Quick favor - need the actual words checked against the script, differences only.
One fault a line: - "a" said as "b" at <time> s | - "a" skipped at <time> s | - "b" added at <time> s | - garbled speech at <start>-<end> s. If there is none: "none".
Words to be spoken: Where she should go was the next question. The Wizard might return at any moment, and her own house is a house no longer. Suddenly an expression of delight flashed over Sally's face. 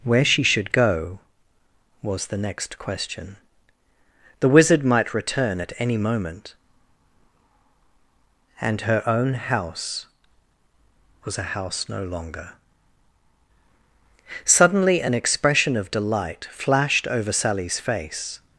- "is" said as "was" at 11.3 s